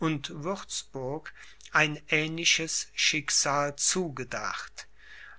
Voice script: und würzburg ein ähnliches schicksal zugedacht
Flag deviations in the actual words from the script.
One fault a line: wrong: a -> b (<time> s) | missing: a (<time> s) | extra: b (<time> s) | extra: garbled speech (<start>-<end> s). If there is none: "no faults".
no faults